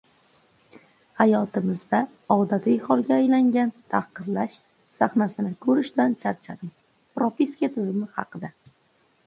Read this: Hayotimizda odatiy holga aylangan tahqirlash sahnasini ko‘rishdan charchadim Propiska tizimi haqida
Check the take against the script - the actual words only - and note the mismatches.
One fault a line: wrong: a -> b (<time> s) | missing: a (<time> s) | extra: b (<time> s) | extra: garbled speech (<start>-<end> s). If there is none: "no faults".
no faults